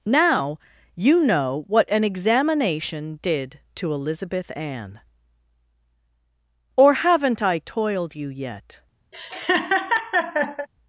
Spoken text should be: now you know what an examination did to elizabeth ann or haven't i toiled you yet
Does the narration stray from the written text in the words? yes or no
no